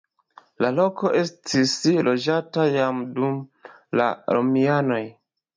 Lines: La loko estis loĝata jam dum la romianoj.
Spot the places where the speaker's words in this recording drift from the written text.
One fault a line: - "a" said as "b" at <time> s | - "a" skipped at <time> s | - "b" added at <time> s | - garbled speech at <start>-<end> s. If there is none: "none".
none